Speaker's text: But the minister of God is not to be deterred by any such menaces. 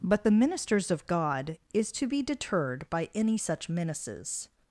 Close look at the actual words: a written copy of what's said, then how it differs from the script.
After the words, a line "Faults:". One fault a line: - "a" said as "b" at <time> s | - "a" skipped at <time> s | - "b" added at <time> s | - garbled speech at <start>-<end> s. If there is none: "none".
But the ministers of God is to be deterred by any such menaces.
Faults:
- "minister" said as "ministers" at 0.3 s
- "not" skipped at 1.9 s